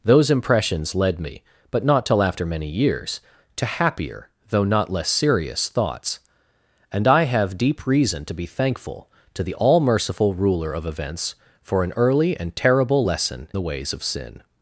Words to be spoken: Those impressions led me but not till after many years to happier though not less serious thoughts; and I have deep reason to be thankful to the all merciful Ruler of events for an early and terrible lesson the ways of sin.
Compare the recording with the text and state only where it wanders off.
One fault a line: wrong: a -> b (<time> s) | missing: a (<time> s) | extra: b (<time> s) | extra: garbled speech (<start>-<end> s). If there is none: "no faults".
no faults